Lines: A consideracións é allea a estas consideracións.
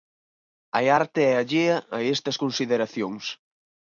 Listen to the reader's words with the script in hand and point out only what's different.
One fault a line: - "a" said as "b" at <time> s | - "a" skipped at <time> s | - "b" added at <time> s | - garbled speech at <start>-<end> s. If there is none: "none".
- "consideracións" said as "arte" at 1.0 s